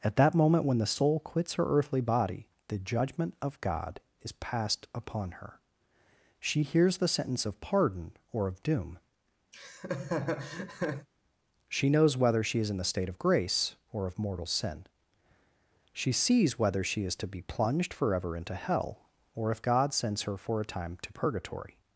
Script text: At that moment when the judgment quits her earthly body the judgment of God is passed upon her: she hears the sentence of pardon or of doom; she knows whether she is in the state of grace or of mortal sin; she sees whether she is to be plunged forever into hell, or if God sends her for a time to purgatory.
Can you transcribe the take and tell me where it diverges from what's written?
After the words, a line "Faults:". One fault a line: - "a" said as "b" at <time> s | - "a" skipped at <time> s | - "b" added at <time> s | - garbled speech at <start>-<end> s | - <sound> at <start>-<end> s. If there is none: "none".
At that moment when the soul quits her earthly body the judgment of God is passed upon her: she hears the sentence of pardon or of doom; she knows whether she is in the state of grace or of mortal sin; she sees whether she is to be plunged forever into hell, or if God sends her for a time to purgatory.
Faults:
- "judgment" said as "soul" at 0.9 s
- laugh at 9.5-11.1 s